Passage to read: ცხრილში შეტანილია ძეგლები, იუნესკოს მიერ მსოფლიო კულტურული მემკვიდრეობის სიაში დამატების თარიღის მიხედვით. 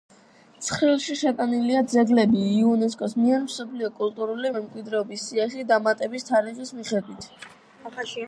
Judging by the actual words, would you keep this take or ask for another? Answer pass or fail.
pass